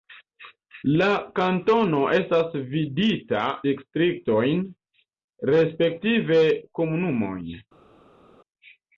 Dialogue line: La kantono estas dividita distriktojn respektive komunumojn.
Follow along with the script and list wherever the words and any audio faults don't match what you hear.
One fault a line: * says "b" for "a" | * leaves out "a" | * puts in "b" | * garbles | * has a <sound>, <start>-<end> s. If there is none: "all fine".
all fine